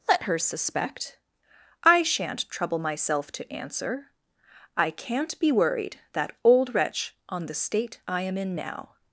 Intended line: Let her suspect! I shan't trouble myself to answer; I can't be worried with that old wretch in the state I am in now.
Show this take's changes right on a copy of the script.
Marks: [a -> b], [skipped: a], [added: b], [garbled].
Let her suspect! I shan't trouble myself to answer; I can't be worried [skipped: with] that old wretch [in -> on] the state I am in now.